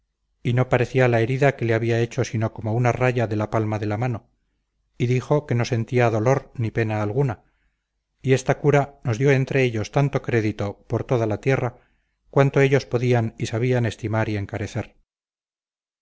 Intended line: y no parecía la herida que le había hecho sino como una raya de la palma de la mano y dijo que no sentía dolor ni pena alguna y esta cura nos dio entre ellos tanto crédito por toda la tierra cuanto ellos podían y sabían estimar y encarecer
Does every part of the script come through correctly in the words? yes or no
yes